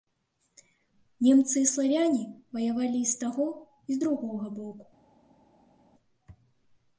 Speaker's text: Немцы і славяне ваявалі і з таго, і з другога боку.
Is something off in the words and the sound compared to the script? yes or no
no